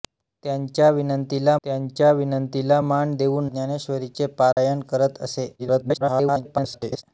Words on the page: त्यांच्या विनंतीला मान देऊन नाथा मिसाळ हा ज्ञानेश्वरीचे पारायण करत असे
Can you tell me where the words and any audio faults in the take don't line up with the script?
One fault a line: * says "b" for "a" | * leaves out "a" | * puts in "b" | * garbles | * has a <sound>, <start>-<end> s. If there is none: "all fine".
* puts in "त्यांच्या विनंतीला"
* leaves out "नाथा मिसाळ हा"
* has a dropout, 4.5-4.6 s
* garbles